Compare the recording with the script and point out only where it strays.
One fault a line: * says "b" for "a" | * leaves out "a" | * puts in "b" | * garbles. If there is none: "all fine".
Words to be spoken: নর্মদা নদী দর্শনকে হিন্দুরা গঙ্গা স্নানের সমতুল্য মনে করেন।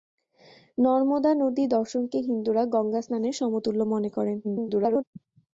* garbles